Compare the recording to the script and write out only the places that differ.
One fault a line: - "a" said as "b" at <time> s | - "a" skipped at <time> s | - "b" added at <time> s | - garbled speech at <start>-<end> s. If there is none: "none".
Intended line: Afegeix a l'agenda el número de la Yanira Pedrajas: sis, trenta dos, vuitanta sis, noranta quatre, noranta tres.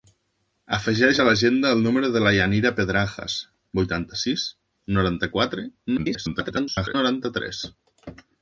- "sis trenta dos" skipped at 3.4 s
- garbled speech at 6.0-6.9 s